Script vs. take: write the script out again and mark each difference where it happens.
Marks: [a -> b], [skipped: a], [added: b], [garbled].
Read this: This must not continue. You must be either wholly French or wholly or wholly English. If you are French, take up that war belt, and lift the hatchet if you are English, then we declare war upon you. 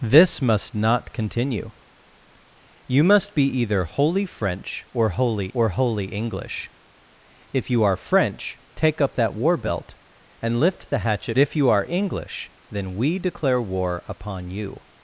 This must not continue. You must be either wholly French or wholly or wholly English. If you are French, take up that war belt, and lift the hatchet if you are English, then we declare war upon you.